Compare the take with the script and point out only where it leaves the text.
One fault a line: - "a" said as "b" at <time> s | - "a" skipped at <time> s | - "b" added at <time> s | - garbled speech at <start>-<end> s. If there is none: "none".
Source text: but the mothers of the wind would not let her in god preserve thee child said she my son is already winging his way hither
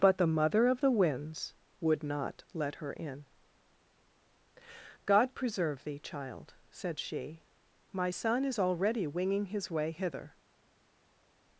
- "mothers" said as "mother" at 0.3 s
- "wind" said as "winds" at 0.9 s